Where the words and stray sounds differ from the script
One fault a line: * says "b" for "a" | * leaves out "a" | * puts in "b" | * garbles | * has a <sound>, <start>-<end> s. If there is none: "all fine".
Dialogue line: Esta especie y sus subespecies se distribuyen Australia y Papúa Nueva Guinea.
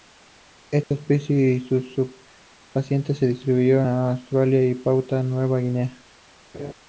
* has a dropout, 0.8-0.9 s
* has a laugh, 6.5-6.7 s